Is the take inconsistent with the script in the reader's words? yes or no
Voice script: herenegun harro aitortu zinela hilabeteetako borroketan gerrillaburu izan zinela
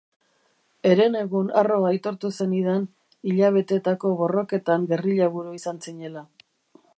yes